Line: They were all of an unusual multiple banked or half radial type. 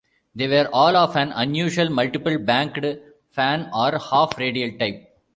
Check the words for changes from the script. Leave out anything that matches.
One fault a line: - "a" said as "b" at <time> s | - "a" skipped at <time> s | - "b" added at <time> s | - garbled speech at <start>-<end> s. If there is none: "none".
- "fan" added at 3.3 s